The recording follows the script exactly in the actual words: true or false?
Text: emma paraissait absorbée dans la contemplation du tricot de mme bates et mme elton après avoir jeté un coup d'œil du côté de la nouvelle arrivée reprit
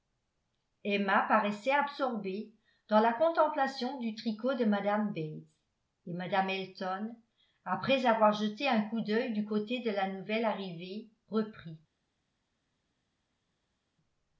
true